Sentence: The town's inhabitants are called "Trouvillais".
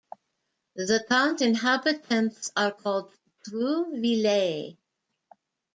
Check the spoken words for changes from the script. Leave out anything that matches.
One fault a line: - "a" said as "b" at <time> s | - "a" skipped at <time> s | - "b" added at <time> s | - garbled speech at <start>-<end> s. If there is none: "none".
none